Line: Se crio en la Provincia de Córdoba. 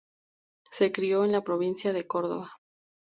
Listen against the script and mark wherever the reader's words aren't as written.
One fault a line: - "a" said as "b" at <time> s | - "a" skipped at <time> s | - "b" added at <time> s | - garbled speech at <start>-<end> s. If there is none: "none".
none